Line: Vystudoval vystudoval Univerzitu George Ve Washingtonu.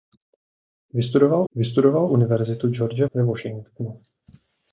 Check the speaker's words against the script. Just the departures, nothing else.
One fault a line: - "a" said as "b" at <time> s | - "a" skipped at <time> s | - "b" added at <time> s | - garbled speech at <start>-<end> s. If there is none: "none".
none